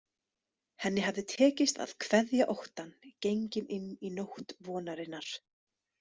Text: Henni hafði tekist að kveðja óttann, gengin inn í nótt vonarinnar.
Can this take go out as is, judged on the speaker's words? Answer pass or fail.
pass